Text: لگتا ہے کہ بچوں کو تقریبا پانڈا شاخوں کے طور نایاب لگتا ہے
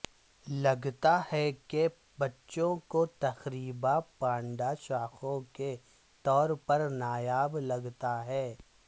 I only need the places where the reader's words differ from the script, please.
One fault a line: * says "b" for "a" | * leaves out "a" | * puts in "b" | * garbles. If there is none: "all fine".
* puts in "پر"